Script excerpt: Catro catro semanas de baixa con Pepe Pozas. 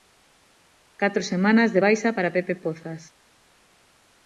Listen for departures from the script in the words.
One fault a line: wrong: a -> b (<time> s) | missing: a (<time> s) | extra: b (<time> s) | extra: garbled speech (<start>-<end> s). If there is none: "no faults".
missing: catro (1.2 s)
wrong: con -> para (2.1 s)